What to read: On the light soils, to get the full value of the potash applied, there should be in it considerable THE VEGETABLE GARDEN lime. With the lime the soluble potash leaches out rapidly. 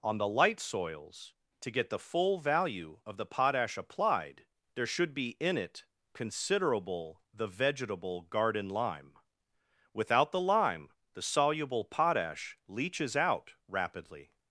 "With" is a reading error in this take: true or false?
true